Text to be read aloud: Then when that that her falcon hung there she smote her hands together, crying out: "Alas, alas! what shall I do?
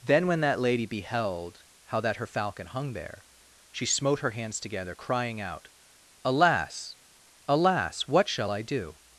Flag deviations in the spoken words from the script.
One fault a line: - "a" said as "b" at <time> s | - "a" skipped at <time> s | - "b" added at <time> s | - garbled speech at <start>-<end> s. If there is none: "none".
- "lady beheld how" added at 0.6 s